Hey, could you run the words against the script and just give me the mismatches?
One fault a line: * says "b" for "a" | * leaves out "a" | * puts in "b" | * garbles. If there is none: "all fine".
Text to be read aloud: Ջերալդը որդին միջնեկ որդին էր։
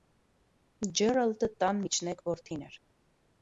* says "տան" for "որդին"